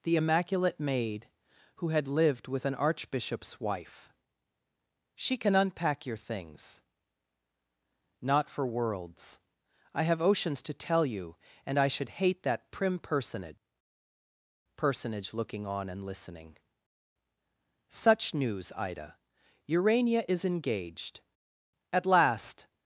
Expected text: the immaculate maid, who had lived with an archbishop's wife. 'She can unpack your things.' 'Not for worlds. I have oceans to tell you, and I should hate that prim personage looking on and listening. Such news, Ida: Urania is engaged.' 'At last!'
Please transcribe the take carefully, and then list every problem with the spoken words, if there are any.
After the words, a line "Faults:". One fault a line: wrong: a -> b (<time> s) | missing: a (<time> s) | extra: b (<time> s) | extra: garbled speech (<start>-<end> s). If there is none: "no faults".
the immaculate maid, who had lived with an archbishop's wife. 'She can unpack your things.' 'Not for worlds. I have oceans to tell you, and I should hate that prim personage personage looking on and listening. Such news, Ida: Urania is engaged.' 'At last!'
Faults:
extra: personage (14.8 s)